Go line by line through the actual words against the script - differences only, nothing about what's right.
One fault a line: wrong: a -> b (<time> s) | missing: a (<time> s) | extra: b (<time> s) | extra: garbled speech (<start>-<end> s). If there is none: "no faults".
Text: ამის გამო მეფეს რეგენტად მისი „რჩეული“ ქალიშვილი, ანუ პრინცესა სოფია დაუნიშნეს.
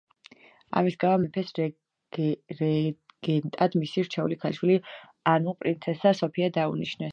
no faults